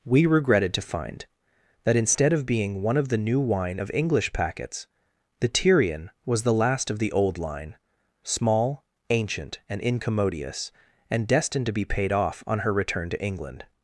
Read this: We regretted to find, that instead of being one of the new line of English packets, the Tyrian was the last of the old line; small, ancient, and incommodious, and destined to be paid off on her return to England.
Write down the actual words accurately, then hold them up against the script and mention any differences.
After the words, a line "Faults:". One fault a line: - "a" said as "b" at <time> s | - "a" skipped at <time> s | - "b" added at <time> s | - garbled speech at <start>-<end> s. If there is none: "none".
We regretted to find, that instead of being one of the new wine of English packets, the Tyrian was the last of the old line; small, ancient, and incommodious, and destined to be paid off on her return to England.
Faults:
- "line" said as "wine" at 3.4 s